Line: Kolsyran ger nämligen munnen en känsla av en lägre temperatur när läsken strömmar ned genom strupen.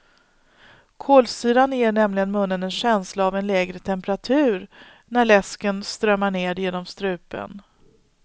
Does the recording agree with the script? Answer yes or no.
yes